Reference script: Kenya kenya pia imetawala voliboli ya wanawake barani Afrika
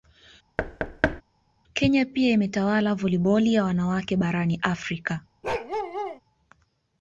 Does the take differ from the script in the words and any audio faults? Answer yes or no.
yes